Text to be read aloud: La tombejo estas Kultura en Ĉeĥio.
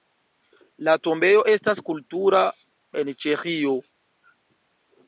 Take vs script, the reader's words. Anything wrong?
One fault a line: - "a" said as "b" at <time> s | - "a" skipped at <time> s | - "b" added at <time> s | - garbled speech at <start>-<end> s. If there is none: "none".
none